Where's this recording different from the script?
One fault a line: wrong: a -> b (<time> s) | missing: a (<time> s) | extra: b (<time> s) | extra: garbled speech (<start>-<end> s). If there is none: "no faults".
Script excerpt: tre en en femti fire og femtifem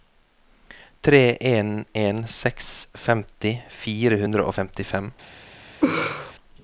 extra: seks (2.4 s)
extra: hundre (4.2 s)